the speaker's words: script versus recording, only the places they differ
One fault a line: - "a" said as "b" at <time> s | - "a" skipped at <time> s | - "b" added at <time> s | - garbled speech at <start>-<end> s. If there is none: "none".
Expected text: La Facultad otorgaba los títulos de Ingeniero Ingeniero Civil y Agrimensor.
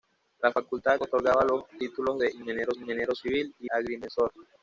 none